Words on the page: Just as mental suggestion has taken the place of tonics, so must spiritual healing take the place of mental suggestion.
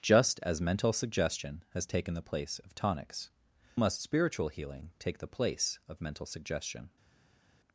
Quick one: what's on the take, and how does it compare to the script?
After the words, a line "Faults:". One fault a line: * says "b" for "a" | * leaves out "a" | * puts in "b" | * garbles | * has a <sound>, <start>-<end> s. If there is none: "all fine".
Just as mental suggestion has taken the place of tonics, must spiritual healing take the place of mental suggestion.
Faults:
* leaves out "so"